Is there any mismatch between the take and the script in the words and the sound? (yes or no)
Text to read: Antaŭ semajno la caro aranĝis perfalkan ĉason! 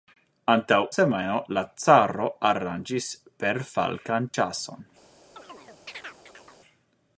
yes